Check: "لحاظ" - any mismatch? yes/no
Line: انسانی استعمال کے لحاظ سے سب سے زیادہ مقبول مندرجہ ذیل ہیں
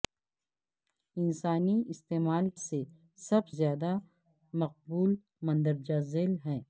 yes